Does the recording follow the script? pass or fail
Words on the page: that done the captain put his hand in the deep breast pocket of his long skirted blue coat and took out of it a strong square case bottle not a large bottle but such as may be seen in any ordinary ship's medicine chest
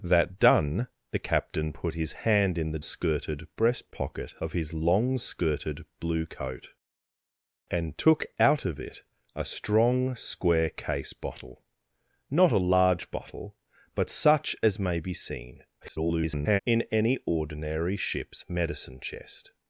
fail